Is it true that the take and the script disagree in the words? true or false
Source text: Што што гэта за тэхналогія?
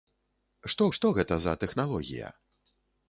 false